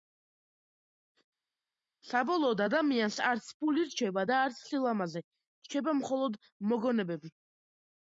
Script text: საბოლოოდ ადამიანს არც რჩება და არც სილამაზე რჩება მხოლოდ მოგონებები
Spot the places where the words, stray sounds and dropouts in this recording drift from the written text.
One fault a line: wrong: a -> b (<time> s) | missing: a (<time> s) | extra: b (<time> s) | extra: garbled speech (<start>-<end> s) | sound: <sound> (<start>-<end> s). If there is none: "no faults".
extra: ფული (3.6 s)